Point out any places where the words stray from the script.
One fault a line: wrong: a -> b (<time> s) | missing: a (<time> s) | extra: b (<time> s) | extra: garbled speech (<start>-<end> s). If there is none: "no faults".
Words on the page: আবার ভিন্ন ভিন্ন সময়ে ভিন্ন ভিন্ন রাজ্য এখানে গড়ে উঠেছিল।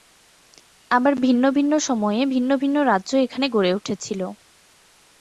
no faults